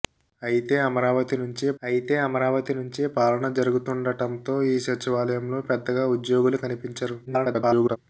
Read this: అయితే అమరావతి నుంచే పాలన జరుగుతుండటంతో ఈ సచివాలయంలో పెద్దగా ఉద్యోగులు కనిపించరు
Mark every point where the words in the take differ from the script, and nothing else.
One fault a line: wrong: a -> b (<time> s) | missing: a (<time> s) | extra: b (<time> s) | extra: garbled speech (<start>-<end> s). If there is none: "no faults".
extra: అయితే అమరావతి నుంచే (1.8 s)
extra: garbled speech (7.3-8.0 s)